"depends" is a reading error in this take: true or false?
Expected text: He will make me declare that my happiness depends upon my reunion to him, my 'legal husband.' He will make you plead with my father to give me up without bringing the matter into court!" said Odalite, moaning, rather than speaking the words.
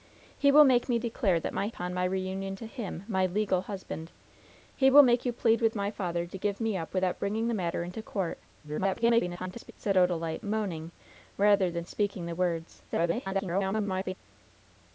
true